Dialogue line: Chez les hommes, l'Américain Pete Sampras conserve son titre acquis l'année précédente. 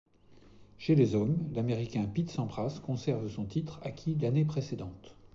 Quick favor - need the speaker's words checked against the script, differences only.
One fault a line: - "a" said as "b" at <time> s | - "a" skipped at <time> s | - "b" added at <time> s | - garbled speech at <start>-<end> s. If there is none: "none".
none